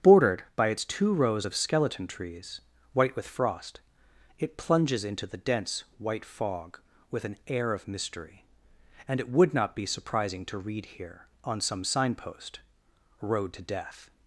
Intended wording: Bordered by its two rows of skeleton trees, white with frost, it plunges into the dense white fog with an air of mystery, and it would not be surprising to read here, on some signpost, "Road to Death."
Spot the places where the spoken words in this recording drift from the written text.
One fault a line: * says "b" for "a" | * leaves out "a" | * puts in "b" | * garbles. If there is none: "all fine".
all fine